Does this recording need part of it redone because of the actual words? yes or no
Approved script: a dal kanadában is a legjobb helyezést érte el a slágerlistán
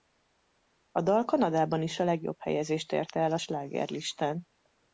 no